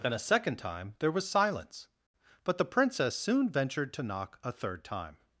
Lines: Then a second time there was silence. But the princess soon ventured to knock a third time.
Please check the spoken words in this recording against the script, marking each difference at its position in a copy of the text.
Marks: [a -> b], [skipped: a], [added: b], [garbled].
Then a second time there was silence. But the princess soon ventured to knock a third time.